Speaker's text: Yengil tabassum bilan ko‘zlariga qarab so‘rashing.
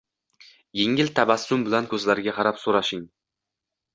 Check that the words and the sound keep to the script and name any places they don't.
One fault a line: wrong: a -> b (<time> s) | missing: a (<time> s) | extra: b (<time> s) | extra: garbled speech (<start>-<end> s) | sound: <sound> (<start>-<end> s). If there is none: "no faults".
no faults